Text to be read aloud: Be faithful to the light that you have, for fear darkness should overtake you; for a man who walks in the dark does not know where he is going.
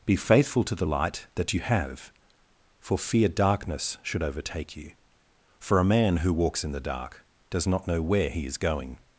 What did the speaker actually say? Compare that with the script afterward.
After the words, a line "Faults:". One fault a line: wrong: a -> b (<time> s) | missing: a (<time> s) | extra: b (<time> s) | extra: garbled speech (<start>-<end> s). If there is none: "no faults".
Be faithful to the light that you have, for fear darkness should overtake you; for a man who walks in the dark does not know where he is going.
Faults:
no faults